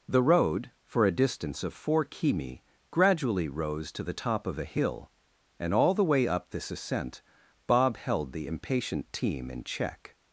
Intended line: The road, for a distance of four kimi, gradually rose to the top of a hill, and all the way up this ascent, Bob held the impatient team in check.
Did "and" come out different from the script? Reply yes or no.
no